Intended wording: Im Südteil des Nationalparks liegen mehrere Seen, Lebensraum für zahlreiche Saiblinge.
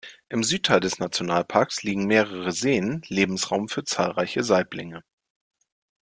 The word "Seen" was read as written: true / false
true